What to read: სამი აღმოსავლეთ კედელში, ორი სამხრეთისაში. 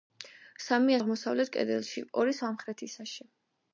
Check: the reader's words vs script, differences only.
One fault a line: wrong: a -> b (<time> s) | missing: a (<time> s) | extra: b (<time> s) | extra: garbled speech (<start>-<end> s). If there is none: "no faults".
no faults